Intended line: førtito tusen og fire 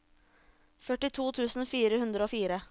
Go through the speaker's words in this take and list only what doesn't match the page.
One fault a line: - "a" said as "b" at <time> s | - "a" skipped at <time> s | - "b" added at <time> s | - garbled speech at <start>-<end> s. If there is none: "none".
- "fire hundre" added at 1.8 s